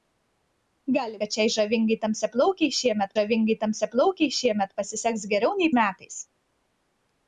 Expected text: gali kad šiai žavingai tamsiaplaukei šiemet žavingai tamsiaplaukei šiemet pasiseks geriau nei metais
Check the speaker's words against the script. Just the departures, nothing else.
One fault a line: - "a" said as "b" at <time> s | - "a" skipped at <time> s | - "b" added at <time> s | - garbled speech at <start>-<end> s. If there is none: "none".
none